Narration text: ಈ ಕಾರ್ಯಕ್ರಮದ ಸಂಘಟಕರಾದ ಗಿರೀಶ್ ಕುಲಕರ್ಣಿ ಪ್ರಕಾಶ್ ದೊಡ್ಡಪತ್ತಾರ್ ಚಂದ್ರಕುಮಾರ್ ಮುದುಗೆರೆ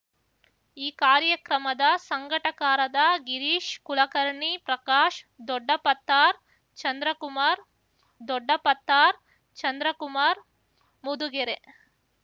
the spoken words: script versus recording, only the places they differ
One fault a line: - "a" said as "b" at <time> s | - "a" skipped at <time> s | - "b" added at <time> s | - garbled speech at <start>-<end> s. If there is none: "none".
- "ದೊಡ್ಡಪತ್ತಾರ್ ಚಂದ್ರಕುಮಾರ್" added at 8.3 s